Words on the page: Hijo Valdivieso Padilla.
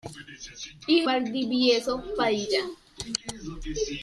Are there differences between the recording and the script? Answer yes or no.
no